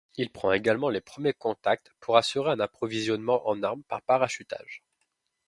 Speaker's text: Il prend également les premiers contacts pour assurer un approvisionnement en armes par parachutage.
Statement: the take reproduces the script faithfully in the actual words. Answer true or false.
true